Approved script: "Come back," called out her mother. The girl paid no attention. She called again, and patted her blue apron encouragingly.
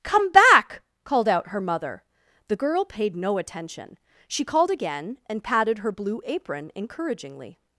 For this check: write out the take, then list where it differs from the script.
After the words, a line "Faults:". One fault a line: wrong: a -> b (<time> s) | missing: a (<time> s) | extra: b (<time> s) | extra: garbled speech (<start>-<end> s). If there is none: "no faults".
"Come back," called out her mother. The girl paid no attention. She called again, and patted her blue apron encouragingly.
Faults:
no faults